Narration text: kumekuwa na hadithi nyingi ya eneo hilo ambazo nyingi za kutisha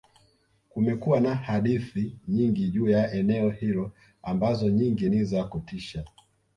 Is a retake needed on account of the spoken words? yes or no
yes